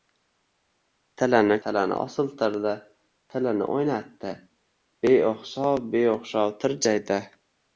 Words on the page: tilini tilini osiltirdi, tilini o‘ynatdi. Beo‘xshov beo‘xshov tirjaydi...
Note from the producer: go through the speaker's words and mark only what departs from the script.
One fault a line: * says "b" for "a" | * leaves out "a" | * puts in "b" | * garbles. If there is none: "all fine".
all fine